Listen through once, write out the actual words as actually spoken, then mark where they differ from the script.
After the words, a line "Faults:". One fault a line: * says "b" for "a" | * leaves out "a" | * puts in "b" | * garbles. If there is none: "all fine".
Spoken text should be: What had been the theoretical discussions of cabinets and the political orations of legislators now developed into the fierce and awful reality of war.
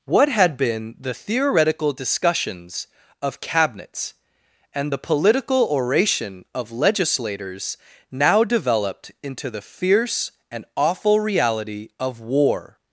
What had been the theoretical discussions of cabinets and the political oration of legislators now developed into the fierce and awful reality of war.
Faults:
* says "oration" for "orations"